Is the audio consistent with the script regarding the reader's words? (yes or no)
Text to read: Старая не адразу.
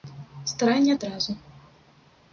yes